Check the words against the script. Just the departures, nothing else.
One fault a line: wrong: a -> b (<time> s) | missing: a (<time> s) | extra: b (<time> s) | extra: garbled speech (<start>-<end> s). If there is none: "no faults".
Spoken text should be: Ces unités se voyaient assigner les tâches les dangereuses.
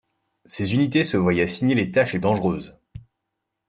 no faults